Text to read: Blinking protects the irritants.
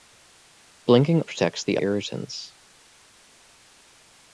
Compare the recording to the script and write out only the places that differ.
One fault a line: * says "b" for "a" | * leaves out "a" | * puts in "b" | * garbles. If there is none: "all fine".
all fine